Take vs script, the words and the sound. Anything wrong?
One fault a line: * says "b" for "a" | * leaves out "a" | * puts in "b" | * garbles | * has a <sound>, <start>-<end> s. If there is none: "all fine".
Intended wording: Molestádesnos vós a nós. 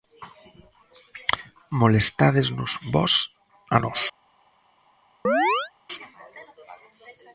* has a chirp, 5.2-5.7 s